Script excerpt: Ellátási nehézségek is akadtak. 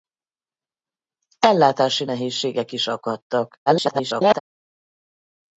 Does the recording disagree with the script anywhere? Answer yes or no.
yes